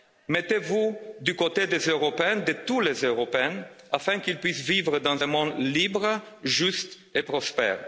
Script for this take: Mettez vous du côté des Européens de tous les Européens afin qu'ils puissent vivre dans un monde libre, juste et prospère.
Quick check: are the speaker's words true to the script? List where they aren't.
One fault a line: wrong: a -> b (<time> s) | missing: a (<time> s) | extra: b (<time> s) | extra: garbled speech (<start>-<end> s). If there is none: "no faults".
no faults